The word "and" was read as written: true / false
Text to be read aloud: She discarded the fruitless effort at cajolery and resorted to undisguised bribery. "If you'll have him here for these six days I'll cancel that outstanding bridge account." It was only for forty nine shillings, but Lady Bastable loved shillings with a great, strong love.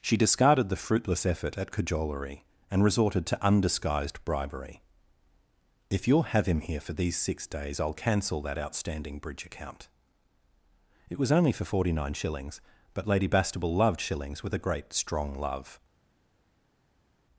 true